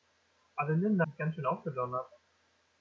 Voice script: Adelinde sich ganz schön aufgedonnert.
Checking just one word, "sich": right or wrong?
right